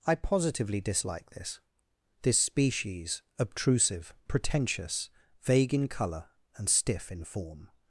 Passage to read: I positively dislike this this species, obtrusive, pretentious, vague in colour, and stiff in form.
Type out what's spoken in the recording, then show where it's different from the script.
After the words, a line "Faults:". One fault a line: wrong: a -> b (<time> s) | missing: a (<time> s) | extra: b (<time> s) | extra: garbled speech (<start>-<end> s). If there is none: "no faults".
I positively dislike this this species, obtrusive, pretentious, vague in colour, and stiff in form.
Faults:
no faults